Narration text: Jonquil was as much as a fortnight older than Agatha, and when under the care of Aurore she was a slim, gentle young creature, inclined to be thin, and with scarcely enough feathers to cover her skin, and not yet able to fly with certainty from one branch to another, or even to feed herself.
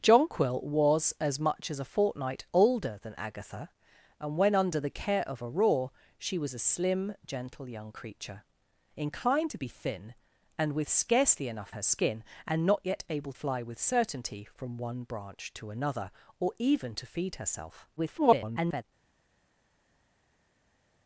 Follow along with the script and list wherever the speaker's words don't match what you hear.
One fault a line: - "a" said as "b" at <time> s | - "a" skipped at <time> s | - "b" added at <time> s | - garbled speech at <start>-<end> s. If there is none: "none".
- "feathers to cover" skipped at 11.7 s
- "to" skipped at 13.3 s
- garbled speech at 18.0-18.8 s